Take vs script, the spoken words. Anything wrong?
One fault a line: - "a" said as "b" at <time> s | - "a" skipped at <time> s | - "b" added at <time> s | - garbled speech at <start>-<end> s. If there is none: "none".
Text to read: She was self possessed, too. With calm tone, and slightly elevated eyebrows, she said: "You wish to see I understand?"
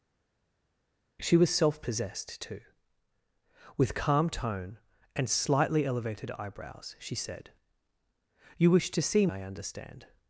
none